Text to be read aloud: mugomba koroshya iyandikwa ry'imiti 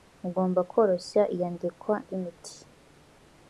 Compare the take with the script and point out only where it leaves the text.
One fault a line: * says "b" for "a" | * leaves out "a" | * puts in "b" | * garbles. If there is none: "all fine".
all fine